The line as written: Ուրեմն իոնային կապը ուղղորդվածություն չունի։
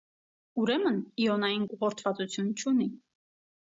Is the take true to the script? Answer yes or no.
no